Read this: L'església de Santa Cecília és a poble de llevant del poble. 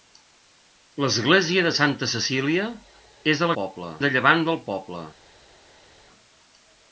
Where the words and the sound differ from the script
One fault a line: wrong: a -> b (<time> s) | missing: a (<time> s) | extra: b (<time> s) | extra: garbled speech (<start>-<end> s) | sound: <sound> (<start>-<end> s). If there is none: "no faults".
no faults